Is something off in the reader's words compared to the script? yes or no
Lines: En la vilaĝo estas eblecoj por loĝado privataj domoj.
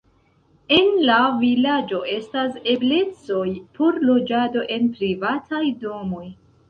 yes